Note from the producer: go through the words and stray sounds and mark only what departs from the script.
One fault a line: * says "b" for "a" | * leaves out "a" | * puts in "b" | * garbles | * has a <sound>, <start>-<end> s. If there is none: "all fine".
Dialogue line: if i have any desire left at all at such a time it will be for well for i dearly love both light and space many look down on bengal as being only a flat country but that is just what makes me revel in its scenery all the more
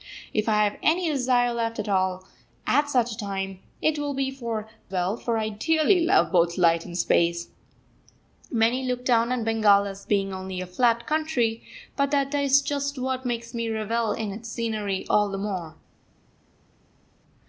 all fine